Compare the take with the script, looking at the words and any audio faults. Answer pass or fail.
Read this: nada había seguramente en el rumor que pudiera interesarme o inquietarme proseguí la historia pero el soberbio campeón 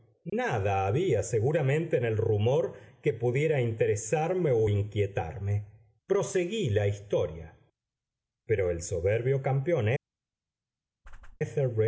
fail